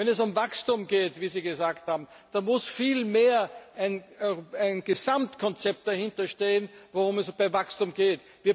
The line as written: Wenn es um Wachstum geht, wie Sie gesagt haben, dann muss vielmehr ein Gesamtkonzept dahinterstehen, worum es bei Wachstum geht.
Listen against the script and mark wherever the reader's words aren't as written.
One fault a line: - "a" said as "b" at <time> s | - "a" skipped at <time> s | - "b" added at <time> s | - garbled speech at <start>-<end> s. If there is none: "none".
none